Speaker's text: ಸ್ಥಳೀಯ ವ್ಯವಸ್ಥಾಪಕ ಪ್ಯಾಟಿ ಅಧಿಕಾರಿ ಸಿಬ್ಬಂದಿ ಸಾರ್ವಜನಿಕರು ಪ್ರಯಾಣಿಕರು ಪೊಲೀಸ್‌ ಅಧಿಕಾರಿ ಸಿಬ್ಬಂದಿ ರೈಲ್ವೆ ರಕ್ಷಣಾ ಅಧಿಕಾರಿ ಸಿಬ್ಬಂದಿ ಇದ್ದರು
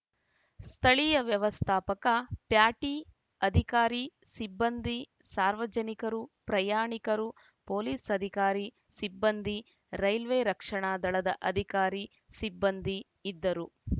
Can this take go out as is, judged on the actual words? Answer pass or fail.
fail